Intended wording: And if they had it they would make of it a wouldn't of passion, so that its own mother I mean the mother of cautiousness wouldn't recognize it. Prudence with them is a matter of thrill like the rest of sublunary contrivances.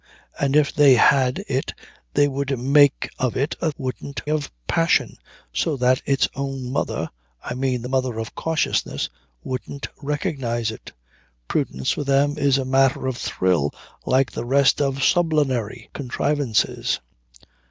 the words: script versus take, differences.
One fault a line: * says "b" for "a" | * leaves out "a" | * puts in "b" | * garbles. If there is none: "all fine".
all fine